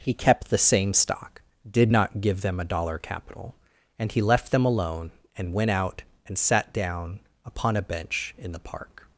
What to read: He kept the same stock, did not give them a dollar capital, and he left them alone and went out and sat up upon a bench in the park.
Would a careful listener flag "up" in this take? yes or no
yes